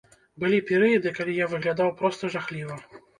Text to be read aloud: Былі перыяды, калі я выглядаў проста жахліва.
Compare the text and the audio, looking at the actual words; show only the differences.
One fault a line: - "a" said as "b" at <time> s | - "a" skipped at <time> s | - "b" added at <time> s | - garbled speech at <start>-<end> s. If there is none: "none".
none